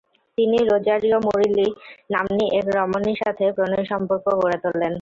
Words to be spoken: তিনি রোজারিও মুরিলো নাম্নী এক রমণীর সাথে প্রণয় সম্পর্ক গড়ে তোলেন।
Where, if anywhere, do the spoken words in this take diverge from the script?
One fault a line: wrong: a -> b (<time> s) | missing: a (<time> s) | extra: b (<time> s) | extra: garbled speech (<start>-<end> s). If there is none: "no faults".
no faults